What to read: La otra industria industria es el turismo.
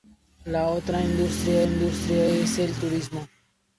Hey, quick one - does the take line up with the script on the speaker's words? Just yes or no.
yes